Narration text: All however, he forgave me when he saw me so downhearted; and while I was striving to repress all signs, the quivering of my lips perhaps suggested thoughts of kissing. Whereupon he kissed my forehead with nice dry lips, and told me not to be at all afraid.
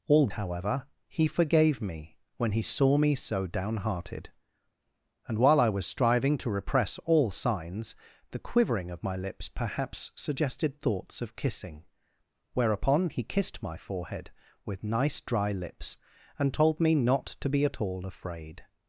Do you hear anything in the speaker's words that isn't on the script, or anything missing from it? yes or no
no